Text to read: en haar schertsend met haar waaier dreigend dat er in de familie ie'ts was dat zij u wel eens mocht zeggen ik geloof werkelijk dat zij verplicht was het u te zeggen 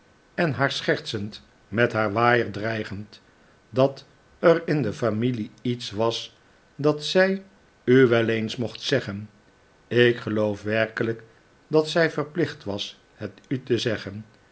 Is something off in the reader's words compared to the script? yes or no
no